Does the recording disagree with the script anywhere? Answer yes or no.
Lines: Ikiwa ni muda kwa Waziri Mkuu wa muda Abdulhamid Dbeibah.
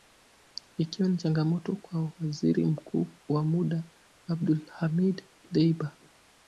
yes